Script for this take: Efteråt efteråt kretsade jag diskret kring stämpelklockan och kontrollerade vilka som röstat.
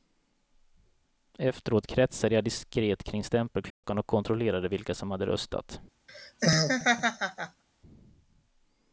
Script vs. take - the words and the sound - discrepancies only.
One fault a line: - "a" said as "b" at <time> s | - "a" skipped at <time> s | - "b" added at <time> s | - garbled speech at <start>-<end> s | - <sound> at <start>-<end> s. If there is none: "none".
- "efteråt" skipped at 1.9 s
- dropout at 3.7-3.8 s
- "hade" added at 5.1 s
- laugh at 6.1-7.6 s